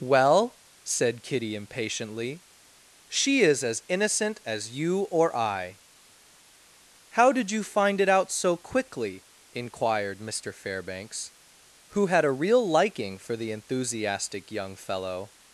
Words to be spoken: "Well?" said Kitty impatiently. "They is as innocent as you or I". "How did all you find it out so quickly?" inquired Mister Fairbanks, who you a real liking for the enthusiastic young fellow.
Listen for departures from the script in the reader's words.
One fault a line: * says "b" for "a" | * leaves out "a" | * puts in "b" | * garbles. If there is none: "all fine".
* says "She" for "They"
* leaves out "all"
* says "had" for "you"